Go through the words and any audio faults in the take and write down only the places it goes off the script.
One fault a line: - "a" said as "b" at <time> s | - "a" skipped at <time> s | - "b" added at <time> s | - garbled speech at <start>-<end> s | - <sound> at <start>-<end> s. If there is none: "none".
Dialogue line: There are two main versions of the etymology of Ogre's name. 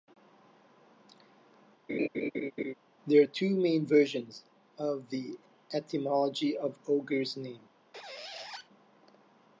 - laugh at 1.9-2.7 s
- squeak at 7.9-8.7 s